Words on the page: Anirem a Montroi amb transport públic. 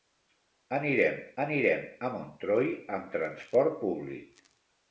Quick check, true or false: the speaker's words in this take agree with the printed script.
false